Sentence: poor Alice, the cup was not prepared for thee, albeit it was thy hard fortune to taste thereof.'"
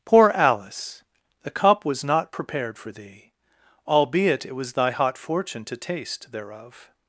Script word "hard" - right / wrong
wrong